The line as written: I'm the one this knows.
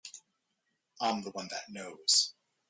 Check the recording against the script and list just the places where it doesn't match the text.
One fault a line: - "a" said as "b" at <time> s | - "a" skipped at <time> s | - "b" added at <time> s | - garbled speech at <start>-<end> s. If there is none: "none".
- "this" said as "that" at 1.5 s